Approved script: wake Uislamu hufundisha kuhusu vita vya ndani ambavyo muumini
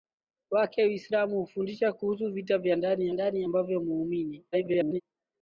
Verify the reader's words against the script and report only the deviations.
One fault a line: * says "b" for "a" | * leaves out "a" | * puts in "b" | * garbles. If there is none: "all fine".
* puts in "ndani"
* garbles